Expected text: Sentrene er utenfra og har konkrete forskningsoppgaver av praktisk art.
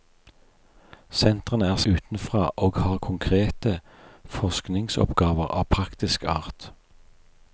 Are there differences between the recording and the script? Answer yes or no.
no